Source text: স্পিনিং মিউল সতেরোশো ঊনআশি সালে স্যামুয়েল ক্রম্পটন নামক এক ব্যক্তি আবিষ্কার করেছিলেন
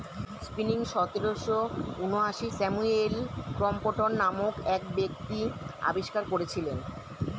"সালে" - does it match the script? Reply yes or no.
no